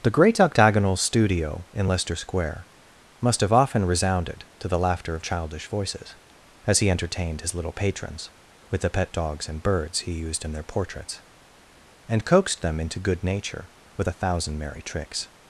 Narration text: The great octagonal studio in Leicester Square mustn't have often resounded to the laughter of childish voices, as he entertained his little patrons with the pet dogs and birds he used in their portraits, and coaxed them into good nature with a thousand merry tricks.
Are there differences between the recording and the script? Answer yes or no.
yes